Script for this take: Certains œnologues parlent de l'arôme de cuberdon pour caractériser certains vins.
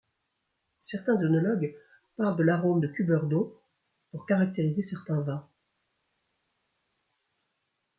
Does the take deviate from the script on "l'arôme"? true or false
false